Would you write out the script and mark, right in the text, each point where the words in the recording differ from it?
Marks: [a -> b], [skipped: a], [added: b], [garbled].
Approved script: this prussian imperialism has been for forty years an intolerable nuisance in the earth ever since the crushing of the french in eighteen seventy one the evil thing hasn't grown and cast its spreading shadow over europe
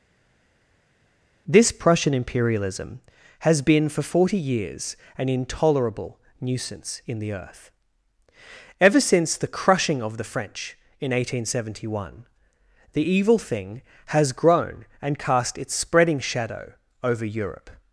this prussian imperialism has been for forty years an intolerable nuisance in the earth ever since the crushing of the french in eighteen seventy one the evil thing [hasn't -> has] grown and cast its spreading shadow over europe